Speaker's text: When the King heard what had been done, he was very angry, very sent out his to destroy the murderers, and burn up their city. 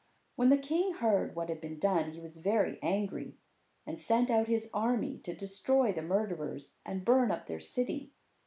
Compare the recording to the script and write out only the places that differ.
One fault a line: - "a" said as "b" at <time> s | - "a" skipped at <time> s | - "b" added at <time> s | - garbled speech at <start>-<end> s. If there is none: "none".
- "very" said as "and" at 3.9 s
- "army" added at 4.7 s